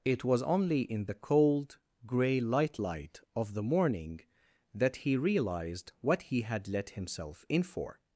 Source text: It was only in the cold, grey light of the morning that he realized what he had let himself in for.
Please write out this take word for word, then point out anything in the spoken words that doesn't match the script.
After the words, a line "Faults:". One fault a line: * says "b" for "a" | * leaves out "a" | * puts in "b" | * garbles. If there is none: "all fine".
It was only in the cold, grey light light of the morning that he realized what he had let himself in for.
Faults:
* puts in "light"